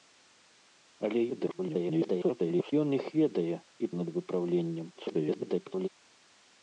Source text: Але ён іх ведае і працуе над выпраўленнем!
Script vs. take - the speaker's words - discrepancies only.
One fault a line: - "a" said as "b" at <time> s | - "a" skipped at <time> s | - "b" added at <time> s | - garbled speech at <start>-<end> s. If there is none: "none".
- garbled speech at 1.3-2.7 s
- "працуе" skipped at 3.8 s
- garbled speech at 4.9-5.9 s